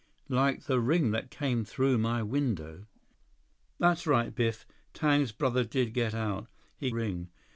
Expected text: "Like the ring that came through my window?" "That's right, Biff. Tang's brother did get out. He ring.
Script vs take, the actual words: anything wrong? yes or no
no